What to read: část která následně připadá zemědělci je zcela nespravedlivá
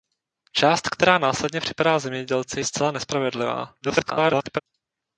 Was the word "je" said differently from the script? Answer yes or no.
yes